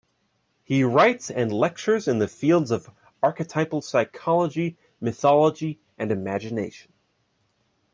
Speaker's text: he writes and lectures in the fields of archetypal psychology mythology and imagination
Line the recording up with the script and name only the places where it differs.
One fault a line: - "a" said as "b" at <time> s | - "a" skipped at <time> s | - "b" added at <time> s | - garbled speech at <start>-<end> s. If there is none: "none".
none